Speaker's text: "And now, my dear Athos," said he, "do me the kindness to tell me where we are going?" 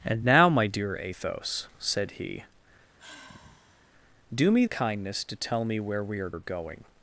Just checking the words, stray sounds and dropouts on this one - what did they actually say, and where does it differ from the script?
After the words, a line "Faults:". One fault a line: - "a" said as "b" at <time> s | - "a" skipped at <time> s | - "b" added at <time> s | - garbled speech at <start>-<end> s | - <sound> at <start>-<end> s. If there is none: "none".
"And now, my dear Athos," said he, "do me kindness to tell me where we are are going?"
Faults:
- sigh at 3.0-3.9 s
- "the" skipped at 4.7 s
- "are" added at 6.3 s